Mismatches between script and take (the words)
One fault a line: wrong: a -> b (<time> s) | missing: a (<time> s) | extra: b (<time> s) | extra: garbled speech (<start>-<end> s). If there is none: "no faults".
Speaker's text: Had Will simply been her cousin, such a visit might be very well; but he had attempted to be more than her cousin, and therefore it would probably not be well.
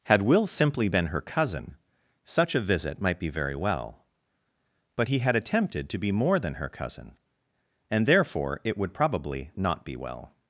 no faults